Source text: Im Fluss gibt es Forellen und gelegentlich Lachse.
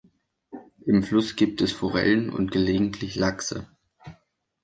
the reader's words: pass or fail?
pass